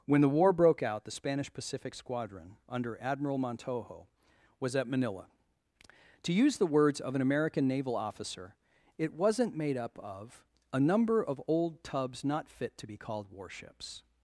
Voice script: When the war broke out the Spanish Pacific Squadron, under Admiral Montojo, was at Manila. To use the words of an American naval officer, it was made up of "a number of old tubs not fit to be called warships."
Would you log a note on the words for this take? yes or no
yes